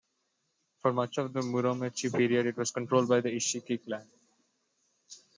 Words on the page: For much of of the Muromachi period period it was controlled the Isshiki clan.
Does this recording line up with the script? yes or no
no